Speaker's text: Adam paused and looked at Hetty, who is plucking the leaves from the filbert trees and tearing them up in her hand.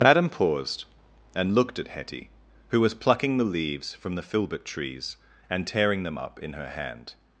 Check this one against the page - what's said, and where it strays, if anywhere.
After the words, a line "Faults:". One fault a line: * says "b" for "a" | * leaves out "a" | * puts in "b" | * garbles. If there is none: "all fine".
Adam paused and looked at Hetty, who was plucking the leaves from the filbert trees and tearing them up in her hand.
Faults:
* says "was" for "is"